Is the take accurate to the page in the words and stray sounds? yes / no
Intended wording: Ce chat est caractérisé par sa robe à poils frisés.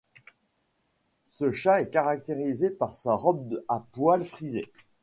yes